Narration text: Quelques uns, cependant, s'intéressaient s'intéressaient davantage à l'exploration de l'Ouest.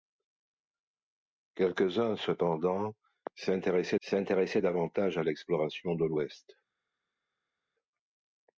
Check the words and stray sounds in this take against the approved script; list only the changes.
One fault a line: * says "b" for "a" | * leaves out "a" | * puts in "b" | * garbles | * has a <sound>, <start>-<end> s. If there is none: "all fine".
all fine